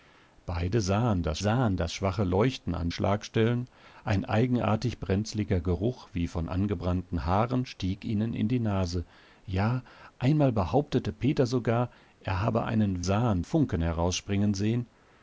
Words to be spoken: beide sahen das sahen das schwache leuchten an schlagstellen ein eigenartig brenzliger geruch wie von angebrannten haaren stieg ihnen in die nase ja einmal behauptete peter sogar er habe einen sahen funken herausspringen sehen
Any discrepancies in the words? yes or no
no